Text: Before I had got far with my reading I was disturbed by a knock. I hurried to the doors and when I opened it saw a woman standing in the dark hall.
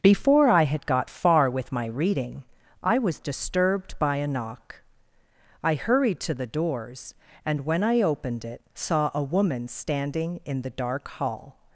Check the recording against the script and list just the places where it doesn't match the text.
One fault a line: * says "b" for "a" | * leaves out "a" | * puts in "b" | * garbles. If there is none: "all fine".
all fine